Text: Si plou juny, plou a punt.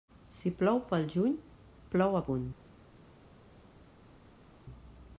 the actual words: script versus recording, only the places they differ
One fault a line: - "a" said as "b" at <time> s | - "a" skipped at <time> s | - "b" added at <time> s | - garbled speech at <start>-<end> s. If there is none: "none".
- "pel" added at 0.9 s